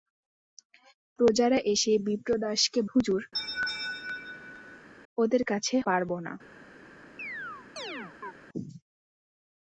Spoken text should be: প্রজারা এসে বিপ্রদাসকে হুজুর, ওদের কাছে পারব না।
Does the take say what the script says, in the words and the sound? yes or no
no